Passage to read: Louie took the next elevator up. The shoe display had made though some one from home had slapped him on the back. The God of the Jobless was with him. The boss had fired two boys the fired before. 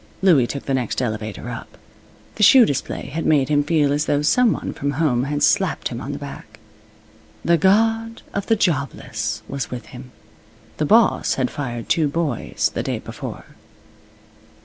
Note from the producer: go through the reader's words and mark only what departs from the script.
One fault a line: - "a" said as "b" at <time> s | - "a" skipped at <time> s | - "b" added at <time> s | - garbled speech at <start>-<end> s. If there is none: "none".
- "him feel as" added at 3.5 s
- "fired" said as "day" at 12.8 s